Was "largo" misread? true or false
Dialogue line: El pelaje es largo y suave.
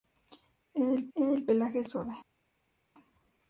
true